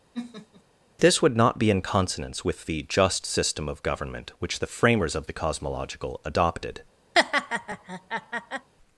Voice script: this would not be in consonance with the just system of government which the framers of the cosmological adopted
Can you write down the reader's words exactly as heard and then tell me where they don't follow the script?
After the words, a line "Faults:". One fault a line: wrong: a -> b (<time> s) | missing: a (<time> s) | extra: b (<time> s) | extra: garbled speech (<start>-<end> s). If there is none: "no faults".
this would not be in consonance with the just system of government which the framers of the cosmological adopted
Faults:
no faults